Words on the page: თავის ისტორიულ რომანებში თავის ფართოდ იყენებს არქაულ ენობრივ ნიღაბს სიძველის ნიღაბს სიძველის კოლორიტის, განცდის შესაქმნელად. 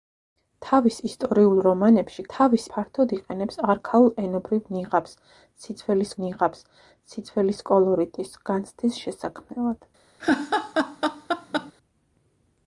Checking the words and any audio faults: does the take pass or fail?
fail